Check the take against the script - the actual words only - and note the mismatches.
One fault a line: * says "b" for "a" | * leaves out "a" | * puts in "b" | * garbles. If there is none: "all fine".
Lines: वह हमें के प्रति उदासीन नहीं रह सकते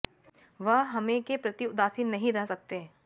all fine